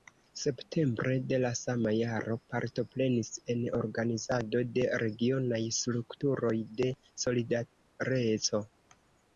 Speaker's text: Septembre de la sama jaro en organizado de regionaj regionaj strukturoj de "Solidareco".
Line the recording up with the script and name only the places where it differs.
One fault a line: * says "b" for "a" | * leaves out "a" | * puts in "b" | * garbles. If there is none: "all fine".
* puts in "partoprenis"
* leaves out "regionaj"